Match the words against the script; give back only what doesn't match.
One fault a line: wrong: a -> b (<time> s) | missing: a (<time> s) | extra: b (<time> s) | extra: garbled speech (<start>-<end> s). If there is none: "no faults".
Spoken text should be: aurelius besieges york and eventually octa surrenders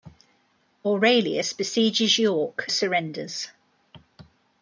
missing: and eventually octa (2.7 s)